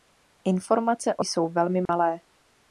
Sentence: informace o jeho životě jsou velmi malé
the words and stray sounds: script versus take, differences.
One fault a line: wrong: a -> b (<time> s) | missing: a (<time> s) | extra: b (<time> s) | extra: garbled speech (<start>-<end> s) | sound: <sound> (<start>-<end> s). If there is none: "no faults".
missing: jeho životě (1.2 s)
sound: dropout (1.9-1.9 s)